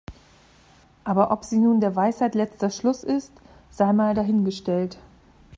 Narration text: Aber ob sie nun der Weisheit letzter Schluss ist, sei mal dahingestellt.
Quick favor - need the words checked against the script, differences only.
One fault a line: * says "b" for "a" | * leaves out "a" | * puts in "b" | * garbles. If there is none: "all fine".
all fine